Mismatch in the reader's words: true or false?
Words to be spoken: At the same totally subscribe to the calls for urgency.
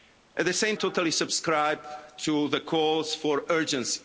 false